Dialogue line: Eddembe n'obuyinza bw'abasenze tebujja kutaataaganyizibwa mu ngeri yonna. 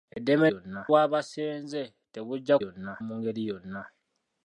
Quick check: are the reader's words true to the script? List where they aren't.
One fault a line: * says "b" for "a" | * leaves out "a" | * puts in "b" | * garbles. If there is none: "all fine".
* says "yonna" for "n'obuyinza"
* says "yonna" for "kutaataaganyizibwa"